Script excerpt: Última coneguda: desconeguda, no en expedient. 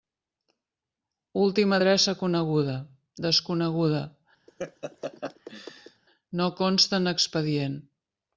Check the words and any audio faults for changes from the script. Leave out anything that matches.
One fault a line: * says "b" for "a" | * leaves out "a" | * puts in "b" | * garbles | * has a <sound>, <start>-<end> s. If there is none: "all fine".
* puts in "adreça"
* has a laugh, 4.5-6.0 s
* puts in "consta"